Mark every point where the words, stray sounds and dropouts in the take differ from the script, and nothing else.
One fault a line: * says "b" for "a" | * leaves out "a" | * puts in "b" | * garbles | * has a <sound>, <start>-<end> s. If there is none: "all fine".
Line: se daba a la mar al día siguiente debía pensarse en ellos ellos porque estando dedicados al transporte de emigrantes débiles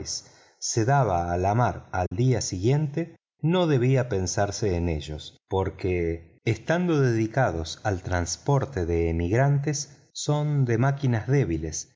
* has a dropout, 2.1-2.1 s
* puts in "no"
* leaves out "ellos"
* puts in "son de máquinas"